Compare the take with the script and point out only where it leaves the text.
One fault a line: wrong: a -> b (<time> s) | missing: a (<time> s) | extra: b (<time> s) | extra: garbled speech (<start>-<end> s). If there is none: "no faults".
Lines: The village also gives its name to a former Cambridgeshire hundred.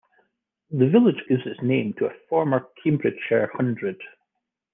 missing: also (1.2 s)